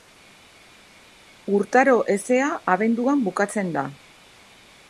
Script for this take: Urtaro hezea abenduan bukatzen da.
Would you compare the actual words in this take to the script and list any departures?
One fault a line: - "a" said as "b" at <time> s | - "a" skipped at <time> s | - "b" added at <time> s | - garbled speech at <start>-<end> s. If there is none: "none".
none